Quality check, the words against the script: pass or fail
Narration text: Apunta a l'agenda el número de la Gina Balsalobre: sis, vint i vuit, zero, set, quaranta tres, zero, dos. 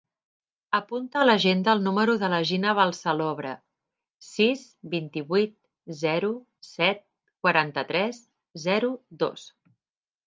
pass